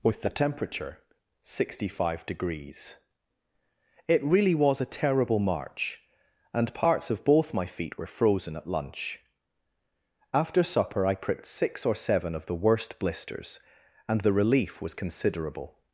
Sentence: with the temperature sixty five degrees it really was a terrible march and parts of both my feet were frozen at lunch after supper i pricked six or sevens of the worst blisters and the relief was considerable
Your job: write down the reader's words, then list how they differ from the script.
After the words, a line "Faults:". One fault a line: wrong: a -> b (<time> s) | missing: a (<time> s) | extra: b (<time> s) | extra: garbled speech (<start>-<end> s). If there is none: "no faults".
with the temperature sixty five degrees it really was a terrible march and parts of both my feet were frozen at lunch after supper i pricked six or seven of the worst blisters and the relief was considerable
Faults:
wrong: sevens -> seven (12.0 s)